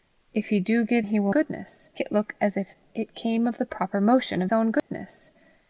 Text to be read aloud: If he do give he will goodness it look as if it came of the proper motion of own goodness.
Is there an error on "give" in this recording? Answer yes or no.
no